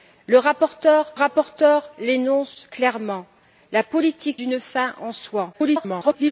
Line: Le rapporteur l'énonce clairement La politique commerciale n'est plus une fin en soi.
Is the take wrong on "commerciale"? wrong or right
wrong